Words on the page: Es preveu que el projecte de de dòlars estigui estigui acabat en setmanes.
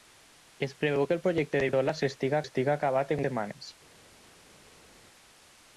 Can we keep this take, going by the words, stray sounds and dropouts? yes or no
yes